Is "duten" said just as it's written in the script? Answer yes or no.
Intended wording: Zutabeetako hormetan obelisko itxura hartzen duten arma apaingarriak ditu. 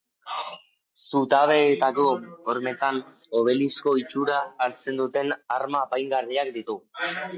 yes